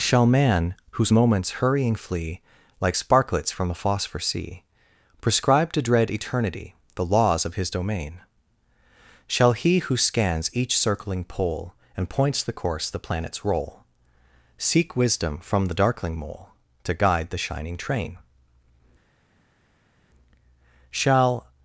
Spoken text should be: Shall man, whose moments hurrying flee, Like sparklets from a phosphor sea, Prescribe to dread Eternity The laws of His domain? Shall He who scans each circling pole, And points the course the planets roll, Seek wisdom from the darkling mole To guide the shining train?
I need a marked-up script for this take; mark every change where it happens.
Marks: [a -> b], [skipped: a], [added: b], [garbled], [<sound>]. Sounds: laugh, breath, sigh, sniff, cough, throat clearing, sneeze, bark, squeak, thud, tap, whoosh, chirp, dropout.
Shall man, whose moments hurrying flee, Like sparklets from a phosphor sea, Prescribe to dread Eternity The laws of His domain? Shall He who scans each circling pole, And points the course the planets roll, Seek wisdom from the darkling mole To guide the shining train? [added: Shall]